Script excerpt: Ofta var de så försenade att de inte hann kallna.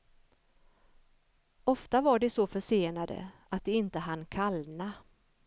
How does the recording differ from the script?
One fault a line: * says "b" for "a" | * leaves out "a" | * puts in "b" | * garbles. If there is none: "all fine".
all fine